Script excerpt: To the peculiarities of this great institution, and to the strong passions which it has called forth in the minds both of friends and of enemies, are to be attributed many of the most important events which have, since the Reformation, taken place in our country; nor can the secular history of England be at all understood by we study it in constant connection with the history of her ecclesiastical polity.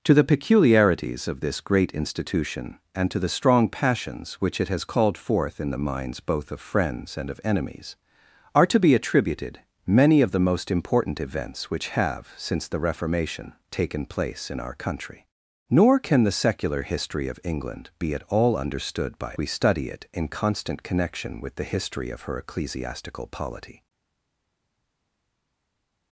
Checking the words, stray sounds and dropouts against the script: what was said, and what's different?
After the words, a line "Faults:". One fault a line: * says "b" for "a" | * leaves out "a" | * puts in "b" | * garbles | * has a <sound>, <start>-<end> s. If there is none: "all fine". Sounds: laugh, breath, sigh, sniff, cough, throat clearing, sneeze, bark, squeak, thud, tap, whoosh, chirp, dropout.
To the peculiarities of this great institution, and to the strong passions which it has called forth in the minds both of friends and of enemies, are to be attributed many of the most important events which have, since the Reformation, taken place in our country; nor can the secular history of England be at all understood by we study it in constant connection with the history of her ecclesiastical polity.
Faults:
all fine